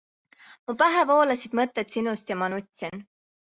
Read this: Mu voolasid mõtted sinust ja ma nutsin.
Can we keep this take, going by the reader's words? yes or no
no